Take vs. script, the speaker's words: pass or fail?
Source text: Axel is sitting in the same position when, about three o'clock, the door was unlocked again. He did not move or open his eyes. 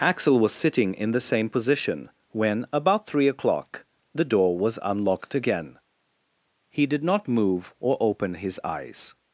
fail